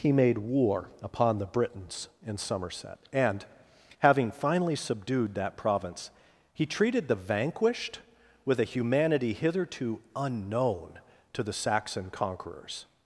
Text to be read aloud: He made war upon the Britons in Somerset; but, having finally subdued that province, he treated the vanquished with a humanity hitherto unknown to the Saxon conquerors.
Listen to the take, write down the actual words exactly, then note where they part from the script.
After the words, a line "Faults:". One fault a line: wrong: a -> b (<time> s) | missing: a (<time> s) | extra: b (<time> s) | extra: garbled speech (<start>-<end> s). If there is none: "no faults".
He made war upon the Britons in Somerset; and, having finally subdued that province, he treated the vanquished with a humanity hitherto unknown to the Saxon conquerors.
Faults:
wrong: but -> and (3.1 s)